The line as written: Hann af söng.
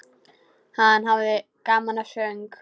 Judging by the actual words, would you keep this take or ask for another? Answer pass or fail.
fail